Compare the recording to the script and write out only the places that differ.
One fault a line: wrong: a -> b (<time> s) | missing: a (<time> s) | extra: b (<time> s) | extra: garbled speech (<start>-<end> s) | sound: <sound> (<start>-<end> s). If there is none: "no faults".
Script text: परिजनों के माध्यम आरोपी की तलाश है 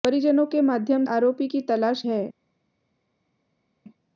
no faults